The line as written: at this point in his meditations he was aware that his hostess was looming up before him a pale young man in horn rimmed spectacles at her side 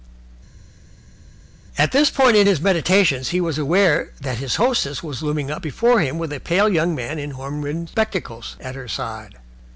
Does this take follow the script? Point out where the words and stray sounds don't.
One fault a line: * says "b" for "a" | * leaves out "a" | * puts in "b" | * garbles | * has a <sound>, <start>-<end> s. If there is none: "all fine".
* puts in "with"